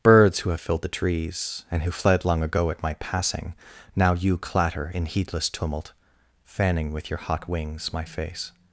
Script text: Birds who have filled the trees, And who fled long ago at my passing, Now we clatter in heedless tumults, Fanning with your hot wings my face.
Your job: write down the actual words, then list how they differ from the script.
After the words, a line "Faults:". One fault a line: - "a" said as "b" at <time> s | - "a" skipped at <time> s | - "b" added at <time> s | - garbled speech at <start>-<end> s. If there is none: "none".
Birds who have filled the trees, And who fled long ago at my passing, Now you clatter in heedless tumult, Fanning with your hot wings my face.
Faults:
- "we" said as "you" at 4.1 s
- "tumults" said as "tumult" at 5.5 s